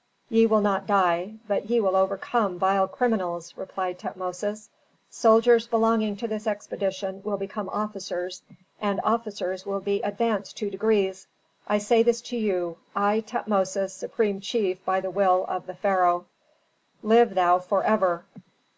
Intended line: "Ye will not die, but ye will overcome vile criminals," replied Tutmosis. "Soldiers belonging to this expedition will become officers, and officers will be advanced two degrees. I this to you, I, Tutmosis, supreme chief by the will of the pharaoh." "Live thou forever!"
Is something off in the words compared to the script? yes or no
yes